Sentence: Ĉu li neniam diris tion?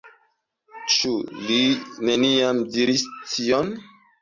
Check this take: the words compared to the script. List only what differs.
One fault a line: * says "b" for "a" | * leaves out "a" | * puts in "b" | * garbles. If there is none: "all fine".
all fine